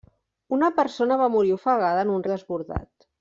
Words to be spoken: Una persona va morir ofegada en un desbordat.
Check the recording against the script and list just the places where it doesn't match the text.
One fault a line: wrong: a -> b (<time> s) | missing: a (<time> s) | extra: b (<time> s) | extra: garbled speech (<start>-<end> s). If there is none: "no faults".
no faults